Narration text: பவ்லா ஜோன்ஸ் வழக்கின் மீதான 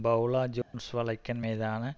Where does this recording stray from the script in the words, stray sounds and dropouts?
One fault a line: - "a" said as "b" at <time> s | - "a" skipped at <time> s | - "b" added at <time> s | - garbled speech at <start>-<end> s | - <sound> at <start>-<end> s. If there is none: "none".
- dropout at 0.6-0.7 s